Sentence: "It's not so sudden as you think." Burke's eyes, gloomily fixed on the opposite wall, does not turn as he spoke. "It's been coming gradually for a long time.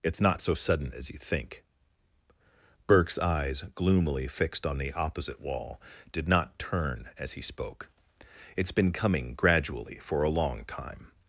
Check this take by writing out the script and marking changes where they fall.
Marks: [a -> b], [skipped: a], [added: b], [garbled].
"It's not so sudden as you think." Burke's eyes, gloomily fixed on the opposite wall, [does -> did] not turn as he spoke. "It's been coming gradually for a long time.